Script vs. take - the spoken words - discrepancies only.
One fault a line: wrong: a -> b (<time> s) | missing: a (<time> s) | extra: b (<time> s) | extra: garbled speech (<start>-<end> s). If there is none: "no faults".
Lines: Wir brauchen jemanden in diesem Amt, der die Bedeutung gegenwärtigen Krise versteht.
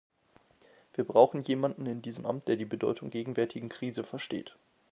no faults